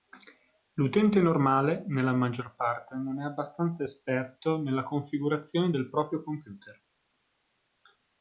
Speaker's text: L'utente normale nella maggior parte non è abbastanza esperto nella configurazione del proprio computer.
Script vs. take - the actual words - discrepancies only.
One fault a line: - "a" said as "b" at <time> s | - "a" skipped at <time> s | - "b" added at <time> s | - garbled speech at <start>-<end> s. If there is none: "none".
none